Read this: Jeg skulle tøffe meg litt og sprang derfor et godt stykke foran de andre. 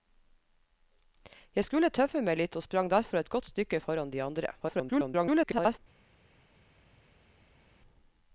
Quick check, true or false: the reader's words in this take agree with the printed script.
false